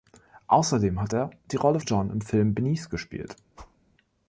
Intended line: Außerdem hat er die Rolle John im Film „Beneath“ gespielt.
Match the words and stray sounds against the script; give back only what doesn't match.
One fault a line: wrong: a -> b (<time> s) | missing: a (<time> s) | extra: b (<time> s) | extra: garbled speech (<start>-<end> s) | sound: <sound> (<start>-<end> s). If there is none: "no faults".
sound: whoosh (3.5-3.8 s)